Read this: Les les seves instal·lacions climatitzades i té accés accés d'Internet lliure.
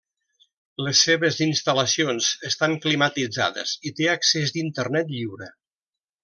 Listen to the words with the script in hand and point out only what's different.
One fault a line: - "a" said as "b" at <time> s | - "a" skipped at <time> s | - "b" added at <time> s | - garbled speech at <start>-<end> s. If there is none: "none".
- "les" skipped at 1.0 s
- "estan" added at 2.5 s
- "accés" skipped at 4.5 s